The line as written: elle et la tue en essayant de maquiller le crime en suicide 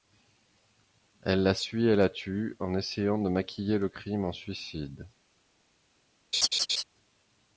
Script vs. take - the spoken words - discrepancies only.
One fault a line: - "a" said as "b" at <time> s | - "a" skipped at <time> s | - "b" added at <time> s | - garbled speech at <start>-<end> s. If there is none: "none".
- "la suit" added at 1.4 s